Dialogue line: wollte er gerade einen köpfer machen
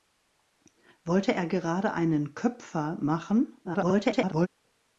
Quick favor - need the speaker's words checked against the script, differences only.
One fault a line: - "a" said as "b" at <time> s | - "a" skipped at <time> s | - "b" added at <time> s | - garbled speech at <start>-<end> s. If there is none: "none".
- garbled speech at 3.6-4.5 s